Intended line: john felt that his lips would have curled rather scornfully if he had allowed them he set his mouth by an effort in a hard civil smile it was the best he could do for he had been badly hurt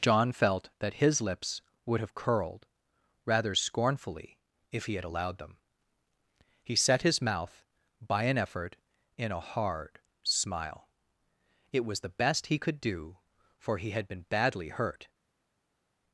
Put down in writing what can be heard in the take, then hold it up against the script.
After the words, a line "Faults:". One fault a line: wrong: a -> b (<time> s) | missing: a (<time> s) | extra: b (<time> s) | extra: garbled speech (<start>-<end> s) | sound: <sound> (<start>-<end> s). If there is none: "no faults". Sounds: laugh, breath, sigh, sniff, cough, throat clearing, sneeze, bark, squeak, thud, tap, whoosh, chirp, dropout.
john felt that his lips would have curled rather scornfully if he had allowed them he set his mouth by an effort in a hard smile it was the best he could do for he had been badly hurt
Faults:
missing: civil (10.0 s)